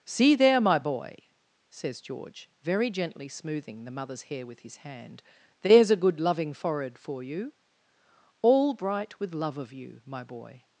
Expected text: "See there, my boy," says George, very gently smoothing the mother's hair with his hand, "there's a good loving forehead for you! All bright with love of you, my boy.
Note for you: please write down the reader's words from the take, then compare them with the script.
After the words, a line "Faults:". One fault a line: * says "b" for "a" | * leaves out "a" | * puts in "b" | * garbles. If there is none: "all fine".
"See there, my boy," says George, very gently smoothing the mother's hair with his hand, "there's a good loving forehead for you! All bright with love of you, my boy.
Faults:
all fine